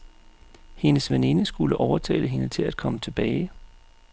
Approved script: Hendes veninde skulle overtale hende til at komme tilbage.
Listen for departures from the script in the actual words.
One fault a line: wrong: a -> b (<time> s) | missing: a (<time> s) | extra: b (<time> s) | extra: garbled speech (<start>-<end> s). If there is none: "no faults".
no faults